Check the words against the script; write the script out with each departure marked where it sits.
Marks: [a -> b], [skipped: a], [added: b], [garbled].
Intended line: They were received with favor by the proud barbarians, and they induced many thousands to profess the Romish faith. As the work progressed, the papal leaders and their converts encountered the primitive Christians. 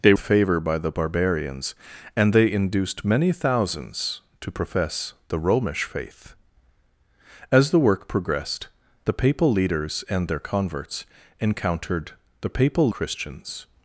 They [skipped: were received with] favor by the [skipped: proud] barbarians, and they induced many thousands to profess the Romish faith. As the work progressed, the papal leaders and their converts encountered the [primitive -> papal] Christians.